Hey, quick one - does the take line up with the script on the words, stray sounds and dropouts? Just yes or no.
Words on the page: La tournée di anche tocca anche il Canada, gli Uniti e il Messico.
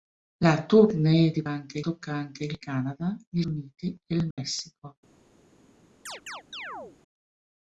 no